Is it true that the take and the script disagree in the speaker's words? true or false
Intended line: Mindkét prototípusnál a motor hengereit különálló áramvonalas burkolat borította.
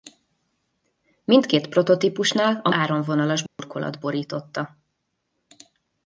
true